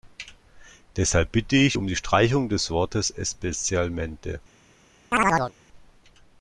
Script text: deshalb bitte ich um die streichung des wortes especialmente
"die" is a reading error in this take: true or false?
false